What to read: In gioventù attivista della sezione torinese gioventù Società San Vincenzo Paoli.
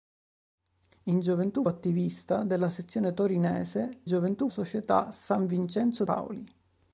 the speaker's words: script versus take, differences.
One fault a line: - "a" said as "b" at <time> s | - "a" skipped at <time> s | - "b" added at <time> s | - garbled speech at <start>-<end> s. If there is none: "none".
none